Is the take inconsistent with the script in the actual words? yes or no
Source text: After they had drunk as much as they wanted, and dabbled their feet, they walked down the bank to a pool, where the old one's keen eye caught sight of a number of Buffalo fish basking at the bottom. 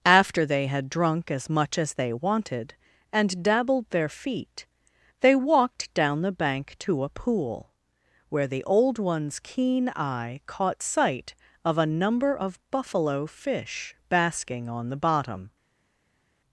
yes